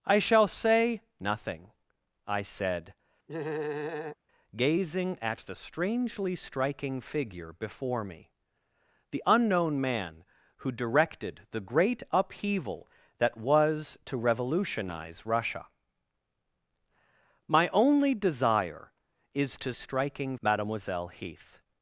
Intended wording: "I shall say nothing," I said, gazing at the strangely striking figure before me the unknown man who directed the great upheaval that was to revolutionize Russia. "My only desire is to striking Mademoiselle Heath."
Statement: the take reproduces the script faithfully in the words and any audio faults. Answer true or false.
false